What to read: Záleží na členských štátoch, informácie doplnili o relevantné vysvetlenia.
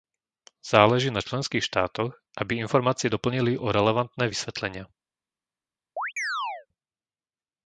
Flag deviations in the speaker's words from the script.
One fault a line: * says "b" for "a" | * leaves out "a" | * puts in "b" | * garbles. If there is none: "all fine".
* puts in "aby"